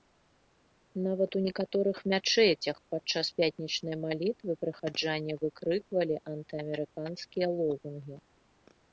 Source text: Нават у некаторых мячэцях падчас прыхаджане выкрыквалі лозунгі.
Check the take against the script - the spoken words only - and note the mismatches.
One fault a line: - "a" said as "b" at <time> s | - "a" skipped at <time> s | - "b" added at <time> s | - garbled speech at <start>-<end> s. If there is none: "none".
- "пятнічнай малітвы" added at 3.4 s
- "антыамерыканскія" added at 6.3 s